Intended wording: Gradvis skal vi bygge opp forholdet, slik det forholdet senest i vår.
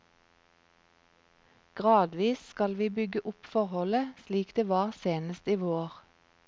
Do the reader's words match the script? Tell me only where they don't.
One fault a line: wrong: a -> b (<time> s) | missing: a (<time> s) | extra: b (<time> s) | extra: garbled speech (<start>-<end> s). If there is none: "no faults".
wrong: forholdet -> var (4.7 s)